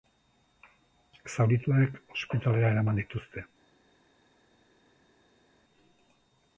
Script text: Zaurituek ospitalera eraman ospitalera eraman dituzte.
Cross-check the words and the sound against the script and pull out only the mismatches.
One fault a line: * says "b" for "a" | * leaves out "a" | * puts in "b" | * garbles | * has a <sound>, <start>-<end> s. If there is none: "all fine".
* leaves out "ospitalera eraman"